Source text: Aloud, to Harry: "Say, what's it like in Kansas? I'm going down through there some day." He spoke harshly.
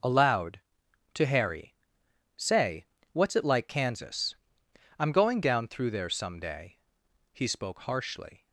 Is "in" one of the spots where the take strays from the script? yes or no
yes